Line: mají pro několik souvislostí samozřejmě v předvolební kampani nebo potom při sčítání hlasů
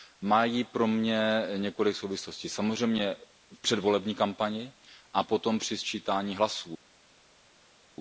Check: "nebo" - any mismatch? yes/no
yes